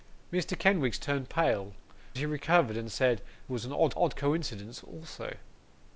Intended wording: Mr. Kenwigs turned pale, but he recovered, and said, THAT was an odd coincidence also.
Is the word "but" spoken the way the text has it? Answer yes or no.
no